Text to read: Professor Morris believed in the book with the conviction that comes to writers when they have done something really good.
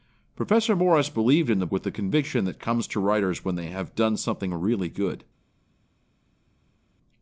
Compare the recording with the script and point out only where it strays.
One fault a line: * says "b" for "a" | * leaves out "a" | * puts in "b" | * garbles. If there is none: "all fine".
* leaves out "book"